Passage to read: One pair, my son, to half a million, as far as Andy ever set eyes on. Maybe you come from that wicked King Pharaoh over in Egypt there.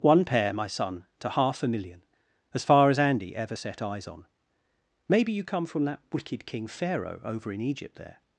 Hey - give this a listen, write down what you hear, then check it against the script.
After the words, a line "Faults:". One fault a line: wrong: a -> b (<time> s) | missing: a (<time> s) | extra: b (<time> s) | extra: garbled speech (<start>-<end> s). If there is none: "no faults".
One pair, my son, to half a million, as far as Andy ever set eyes on. Maybe you come from that wicked King Pharaoh over in Egypt there.
Faults:
no faults